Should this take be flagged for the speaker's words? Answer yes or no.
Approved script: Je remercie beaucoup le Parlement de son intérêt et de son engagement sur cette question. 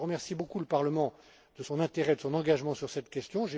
no